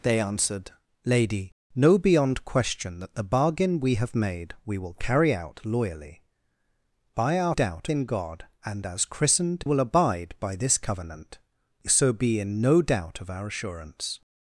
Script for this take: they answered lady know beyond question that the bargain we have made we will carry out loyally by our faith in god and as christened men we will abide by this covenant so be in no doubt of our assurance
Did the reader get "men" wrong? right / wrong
wrong